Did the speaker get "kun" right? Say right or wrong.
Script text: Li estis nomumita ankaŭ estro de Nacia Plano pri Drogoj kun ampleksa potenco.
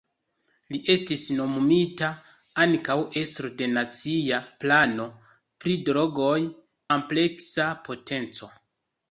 wrong